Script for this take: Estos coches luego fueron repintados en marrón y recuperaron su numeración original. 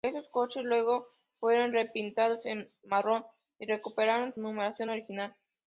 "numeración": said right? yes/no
yes